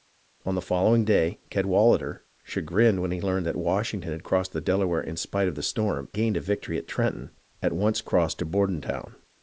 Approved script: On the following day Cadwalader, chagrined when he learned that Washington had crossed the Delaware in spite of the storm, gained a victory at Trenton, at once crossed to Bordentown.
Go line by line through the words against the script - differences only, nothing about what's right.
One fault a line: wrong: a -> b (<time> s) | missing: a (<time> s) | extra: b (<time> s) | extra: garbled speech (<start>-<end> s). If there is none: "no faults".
no faults